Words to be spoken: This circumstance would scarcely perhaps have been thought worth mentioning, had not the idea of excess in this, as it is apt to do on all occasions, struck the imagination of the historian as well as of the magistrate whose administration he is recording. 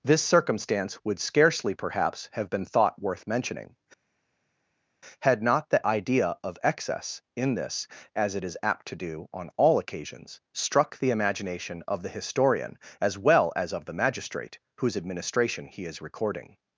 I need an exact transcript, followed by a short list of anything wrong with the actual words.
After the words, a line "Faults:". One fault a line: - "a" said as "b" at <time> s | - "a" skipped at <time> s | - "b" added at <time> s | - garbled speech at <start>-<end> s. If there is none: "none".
This circumstance would scarcely perhaps have been thought worth mentioning, had not the idea of excess in this, as it is apt to do on all occasions, struck the imagination of the historian as well as of the magistrate whose administration he is recording.
Faults:
none